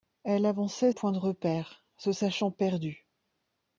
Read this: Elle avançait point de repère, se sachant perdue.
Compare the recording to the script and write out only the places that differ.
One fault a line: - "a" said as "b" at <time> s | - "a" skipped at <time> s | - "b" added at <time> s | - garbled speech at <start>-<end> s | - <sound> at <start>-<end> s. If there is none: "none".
none